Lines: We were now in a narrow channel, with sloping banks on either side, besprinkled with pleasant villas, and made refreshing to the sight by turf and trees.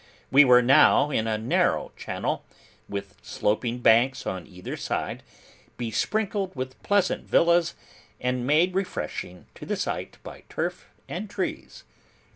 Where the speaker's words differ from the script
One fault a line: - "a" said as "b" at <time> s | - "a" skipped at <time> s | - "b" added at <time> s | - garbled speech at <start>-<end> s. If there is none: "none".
none